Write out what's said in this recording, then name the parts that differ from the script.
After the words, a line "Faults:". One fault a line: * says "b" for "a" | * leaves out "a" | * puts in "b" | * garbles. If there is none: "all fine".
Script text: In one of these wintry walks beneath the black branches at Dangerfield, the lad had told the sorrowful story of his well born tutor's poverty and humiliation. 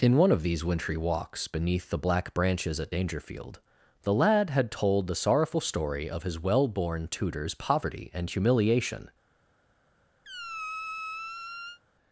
In one of these wintry walks beneath the black branches at Dangerfield, the lad had told the sorrowful story of his well born tutor's poverty and humiliation.
Faults:
all fine